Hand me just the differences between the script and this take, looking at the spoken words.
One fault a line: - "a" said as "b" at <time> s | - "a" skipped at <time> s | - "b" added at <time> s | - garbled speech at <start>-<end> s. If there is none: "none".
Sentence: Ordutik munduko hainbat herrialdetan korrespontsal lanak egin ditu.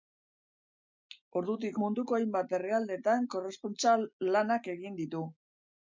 none